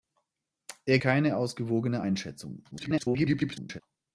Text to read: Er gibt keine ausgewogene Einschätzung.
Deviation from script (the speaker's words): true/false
true